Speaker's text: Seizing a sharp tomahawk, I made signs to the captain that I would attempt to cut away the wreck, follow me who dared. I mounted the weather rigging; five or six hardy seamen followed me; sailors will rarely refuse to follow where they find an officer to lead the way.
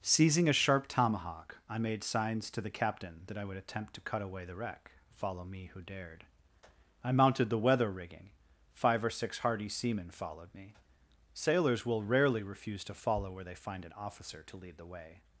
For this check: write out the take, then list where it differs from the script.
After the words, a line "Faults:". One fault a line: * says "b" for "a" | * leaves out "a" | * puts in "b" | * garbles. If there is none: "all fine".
Seizing a sharp tomahawk, I made signs to the captain that I would attempt to cut away the wreck, follow me who dared. I mounted the weather rigging; five or six hardy seamen followed me; sailors will rarely refuse to follow where they find an officer to lead the way.
Faults:
all fine